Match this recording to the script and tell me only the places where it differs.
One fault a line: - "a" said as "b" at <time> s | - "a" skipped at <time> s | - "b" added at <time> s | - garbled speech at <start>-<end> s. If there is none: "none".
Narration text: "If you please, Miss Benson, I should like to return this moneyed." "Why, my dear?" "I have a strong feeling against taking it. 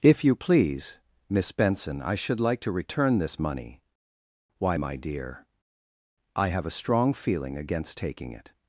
- "moneyed" said as "money" at 3.4 s